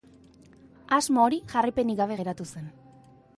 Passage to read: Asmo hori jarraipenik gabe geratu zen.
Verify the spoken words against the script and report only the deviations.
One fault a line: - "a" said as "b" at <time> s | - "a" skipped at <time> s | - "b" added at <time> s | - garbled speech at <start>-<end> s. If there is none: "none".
none